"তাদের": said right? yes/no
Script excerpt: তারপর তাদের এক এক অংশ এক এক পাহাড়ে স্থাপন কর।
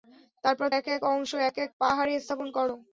no